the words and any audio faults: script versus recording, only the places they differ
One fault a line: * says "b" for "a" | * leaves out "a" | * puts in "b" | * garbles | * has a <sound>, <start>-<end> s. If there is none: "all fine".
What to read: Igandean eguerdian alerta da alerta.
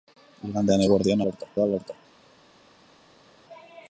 all fine